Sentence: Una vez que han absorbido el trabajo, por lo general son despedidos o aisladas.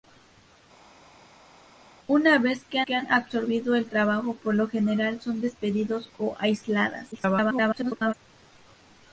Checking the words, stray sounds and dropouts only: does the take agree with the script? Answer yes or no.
no